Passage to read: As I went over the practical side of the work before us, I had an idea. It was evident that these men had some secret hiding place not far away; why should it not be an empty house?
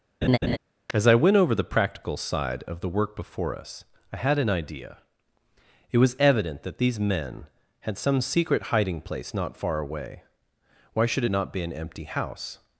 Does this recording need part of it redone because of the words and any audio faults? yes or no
yes